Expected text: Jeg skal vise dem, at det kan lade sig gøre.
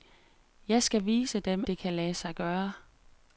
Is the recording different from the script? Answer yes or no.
yes